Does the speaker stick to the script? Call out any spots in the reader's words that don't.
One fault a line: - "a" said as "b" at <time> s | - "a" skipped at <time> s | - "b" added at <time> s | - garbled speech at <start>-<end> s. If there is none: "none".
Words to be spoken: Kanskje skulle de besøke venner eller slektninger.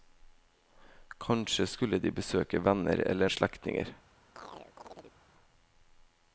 none